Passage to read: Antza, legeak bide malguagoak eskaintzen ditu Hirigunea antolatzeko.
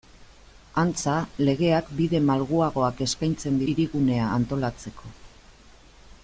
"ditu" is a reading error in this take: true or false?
true